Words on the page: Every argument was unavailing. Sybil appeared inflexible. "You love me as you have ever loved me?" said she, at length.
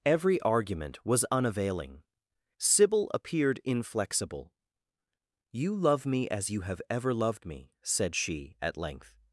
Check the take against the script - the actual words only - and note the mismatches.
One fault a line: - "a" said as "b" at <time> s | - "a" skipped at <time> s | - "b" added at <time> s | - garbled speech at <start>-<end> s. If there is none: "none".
none